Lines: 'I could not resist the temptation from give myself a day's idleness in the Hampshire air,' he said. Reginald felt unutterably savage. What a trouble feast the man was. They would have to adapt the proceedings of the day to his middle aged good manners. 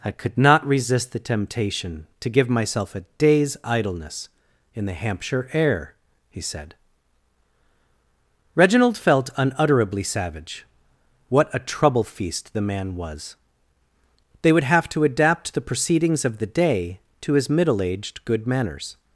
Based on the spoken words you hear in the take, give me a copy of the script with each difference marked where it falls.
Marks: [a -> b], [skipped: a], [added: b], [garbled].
'I could not resist the temptation [from -> to] give myself a day's idleness in the Hampshire air,' he said. Reginald felt unutterably savage. What a trouble feast the man was. They would have to adapt the proceedings of the day to his middle aged good manners.